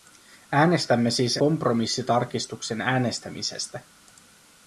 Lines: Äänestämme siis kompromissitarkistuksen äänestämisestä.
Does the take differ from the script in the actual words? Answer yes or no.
no